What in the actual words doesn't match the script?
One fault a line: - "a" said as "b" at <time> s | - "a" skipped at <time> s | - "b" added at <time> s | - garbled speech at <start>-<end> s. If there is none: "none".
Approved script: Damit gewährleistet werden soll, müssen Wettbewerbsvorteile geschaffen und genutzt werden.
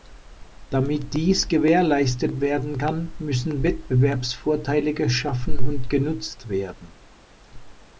- "dies" added at 1.1 s
- "soll" said as "kann" at 2.8 s